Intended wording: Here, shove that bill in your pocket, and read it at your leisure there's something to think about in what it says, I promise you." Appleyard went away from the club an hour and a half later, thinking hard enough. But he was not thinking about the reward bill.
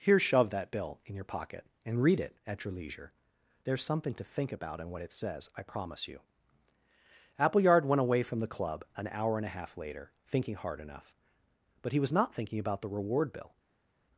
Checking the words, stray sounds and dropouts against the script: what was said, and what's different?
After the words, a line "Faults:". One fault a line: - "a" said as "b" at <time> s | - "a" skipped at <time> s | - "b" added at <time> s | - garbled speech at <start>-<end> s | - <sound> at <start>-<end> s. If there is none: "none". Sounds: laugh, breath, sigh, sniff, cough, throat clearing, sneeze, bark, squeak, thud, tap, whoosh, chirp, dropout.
Here, shove that bill in your pocket, and read it at your leisure there's something to think about in what it says, I promise you." Appleyard went away from the club an hour and a half later, thinking hard enough. But he was not thinking about the reward bill.
Faults:
none